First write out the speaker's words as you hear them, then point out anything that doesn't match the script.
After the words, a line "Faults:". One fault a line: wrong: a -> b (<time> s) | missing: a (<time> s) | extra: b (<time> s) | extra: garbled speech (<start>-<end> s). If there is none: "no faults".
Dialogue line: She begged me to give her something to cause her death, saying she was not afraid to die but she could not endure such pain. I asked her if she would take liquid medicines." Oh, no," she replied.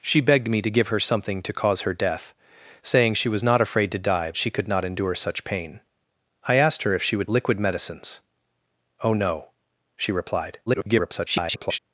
She begged me to give her something to cause her death, saying she was not afraid to die she could not endure such pain. I asked her if she would liquid medicines." Oh, no," she replied. [garbled]
Faults:
missing: but (4.3 s)
missing: take (7.3 s)
extra: garbled speech (10.7-11.8 s)